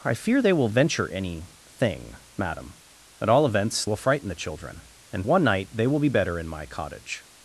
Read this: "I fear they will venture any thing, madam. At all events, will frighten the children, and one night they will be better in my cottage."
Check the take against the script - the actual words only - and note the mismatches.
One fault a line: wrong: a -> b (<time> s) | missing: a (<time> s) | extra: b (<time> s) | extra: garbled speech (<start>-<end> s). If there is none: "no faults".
no faults